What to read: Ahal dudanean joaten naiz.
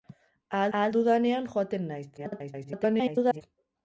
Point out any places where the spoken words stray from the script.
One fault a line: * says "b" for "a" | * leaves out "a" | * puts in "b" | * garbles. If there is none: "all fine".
* puts in "ahal"
* garbles